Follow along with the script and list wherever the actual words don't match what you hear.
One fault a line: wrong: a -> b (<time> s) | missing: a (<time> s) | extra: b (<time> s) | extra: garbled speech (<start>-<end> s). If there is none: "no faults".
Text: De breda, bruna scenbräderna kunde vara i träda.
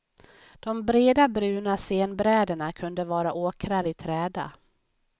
extra: åkrar (3.3 s)